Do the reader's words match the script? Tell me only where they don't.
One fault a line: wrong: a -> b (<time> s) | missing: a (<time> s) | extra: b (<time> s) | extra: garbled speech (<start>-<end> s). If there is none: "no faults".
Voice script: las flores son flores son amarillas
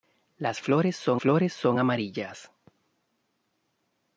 no faults